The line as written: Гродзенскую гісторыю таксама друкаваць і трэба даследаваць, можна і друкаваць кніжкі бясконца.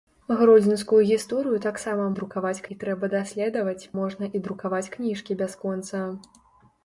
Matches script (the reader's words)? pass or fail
pass